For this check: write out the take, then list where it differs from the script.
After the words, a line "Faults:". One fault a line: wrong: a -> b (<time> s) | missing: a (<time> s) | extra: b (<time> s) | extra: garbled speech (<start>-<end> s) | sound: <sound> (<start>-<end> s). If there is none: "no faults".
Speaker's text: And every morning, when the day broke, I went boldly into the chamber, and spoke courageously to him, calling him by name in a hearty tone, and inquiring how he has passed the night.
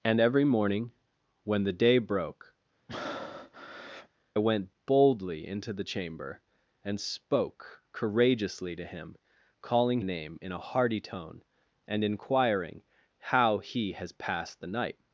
And every morning, when the day broke, went boldly into the chamber, and spoke courageously to him, calling name in a hearty tone, and inquiring how he has passed the night.
Faults:
missing: I (2.5 s)
sound: breath (2.9-4.1 s)
missing: him by (10.0 s)